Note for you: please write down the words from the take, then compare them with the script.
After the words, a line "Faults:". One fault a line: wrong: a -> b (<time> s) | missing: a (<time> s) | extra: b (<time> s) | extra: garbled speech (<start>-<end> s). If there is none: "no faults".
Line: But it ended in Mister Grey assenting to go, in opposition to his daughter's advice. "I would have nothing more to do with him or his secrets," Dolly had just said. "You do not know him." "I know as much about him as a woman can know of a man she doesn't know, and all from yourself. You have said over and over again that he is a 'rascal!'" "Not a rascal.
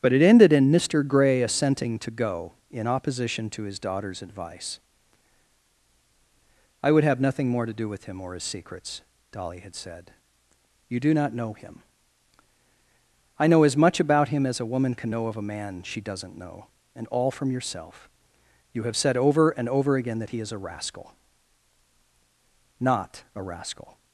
But it ended in Mister Grey assenting to go, in opposition to his daughter's advice. "I would have nothing more to do with him or his secrets," Dolly had said. "You do not know him." "I know as much about him as a woman can know of a man she doesn't know, and all from yourself. You have said over and over again that he is a 'rascal!'" "Not a rascal.
Faults:
missing: just (9.8 s)